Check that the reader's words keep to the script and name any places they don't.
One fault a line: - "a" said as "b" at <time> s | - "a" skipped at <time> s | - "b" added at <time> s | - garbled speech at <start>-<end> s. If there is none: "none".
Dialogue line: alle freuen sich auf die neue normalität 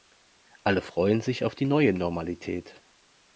none